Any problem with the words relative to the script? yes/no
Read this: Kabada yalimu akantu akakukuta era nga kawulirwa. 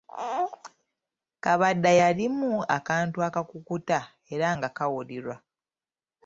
no